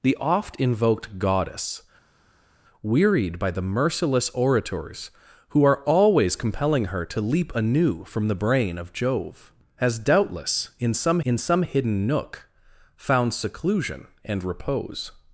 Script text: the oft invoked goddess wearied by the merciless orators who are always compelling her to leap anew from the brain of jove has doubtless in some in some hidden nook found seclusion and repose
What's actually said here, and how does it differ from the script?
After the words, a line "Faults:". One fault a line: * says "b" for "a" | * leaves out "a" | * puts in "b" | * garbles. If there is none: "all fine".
the oft invoked goddess wearied by the merciless orators who are always compelling her to leap anew from the brain of jove has doubtless in some in some hidden nook found seclusion and repose
Faults:
all fine